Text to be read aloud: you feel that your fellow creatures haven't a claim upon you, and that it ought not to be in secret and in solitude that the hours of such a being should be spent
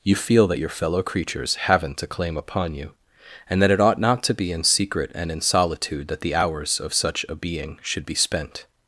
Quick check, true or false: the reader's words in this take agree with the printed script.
true